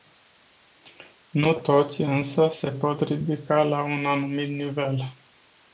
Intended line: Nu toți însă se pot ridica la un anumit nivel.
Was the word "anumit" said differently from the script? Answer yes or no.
no